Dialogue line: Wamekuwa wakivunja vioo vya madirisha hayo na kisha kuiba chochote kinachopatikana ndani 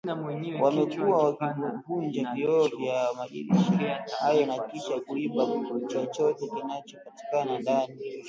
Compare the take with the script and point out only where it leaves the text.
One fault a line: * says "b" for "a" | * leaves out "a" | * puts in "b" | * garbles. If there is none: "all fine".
all fine